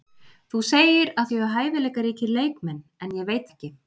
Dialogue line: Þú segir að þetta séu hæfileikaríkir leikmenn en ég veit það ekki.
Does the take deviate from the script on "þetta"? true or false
true